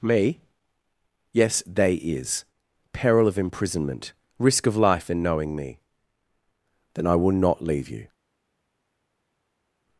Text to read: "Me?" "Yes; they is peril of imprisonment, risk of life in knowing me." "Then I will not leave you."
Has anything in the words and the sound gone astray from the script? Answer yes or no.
no